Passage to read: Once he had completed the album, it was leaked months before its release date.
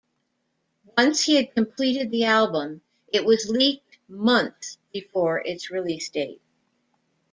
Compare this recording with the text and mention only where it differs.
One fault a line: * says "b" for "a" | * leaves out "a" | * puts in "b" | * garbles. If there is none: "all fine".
all fine